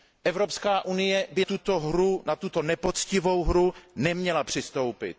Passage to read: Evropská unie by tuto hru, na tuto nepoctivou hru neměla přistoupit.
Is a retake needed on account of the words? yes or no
no